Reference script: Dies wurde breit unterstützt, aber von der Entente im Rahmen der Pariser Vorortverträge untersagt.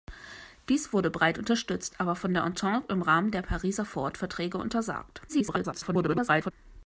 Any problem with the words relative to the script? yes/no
yes